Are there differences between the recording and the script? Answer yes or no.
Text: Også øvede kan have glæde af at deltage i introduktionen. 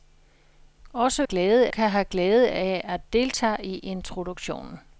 yes